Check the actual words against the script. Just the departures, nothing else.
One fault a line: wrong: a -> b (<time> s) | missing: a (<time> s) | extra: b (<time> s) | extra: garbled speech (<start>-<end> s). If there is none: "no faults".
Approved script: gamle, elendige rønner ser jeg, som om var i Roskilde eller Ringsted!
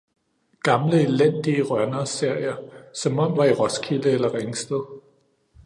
no faults